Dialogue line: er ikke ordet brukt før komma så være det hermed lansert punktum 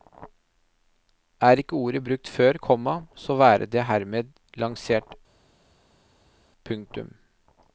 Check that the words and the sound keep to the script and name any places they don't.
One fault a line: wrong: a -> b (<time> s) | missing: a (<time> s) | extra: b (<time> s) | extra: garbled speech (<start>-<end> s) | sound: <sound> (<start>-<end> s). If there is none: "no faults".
no faults